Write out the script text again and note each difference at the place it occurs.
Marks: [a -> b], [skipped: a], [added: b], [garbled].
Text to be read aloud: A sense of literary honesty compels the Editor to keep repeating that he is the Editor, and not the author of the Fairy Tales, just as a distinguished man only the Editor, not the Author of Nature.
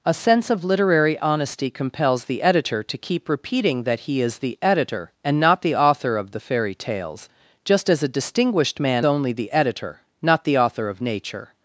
A sense of literary honesty compels the Editor to keep repeating that he is the Editor, and not the author of the Fairy Tales, just as a distinguished man only the Editor, not the Author of Nature.